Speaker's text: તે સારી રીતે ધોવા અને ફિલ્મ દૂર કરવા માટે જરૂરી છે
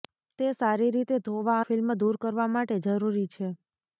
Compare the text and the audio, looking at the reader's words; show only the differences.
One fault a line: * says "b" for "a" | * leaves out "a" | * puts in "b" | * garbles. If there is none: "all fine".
* leaves out "અને"